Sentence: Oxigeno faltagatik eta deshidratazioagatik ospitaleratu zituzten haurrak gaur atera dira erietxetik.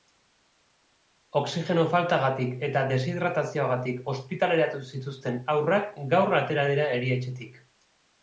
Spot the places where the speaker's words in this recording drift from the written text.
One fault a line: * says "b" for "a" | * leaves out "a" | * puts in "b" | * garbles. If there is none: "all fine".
all fine